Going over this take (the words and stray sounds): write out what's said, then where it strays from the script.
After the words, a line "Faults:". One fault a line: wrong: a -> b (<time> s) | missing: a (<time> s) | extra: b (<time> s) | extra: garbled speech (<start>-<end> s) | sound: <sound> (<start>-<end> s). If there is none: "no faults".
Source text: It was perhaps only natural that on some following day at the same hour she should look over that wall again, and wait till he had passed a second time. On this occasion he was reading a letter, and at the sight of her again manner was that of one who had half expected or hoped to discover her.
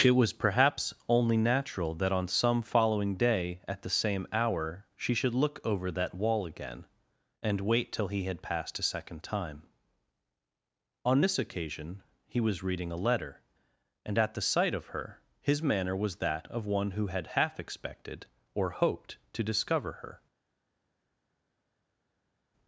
It was perhaps only natural that on some following day at the same hour she should look over that wall again, and wait till he had passed a second time. On this occasion he was reading a letter, and at the sight of her his manner was that of one who had half expected or hoped to discover her.
Faults:
wrong: again -> his (15.4 s)